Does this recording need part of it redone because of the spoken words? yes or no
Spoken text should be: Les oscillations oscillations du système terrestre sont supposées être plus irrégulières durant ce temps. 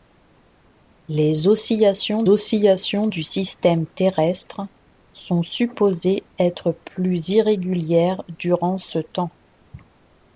no